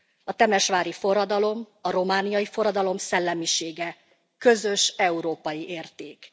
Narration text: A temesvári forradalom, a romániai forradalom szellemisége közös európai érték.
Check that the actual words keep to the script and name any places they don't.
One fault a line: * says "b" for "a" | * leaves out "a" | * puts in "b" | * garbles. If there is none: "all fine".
all fine